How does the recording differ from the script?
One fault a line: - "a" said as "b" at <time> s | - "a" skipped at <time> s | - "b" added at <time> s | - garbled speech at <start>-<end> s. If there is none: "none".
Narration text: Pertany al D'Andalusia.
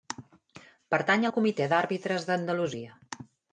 - "Comitè d'Àrbitres" added at 1.4 s